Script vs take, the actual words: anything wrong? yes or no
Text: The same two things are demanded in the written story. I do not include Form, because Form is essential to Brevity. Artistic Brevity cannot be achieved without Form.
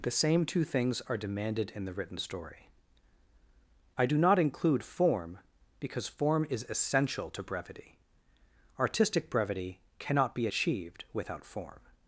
no